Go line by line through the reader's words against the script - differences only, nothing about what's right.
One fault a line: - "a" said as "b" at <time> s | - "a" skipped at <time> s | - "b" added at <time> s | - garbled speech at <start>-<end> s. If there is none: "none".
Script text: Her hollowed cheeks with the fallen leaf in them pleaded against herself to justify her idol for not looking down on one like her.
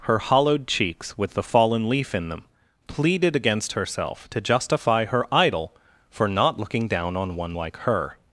none